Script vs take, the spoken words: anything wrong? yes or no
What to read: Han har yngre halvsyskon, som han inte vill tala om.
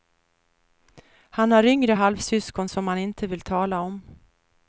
no